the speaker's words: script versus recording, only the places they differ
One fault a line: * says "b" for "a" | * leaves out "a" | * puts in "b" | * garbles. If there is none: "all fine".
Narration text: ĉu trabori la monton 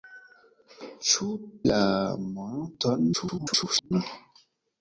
* leaves out "trabori"
* garbles